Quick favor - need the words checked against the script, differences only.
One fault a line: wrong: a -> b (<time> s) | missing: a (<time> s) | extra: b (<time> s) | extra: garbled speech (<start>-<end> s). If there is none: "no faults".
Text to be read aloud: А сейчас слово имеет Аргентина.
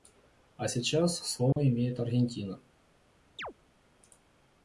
no faults